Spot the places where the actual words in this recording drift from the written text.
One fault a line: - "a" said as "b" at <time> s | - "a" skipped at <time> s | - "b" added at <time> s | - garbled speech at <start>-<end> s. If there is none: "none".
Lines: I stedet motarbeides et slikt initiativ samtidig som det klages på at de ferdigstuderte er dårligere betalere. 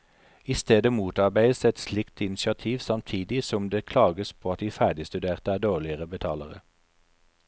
none